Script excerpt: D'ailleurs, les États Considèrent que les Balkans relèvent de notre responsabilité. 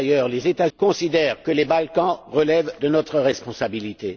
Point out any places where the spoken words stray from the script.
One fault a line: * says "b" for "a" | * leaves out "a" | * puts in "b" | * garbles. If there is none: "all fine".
all fine